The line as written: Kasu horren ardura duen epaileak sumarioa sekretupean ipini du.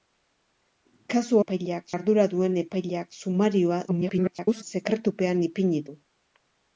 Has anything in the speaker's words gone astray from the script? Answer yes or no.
yes